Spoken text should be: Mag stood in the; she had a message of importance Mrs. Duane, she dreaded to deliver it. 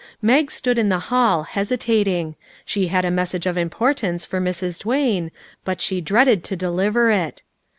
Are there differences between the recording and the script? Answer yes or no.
yes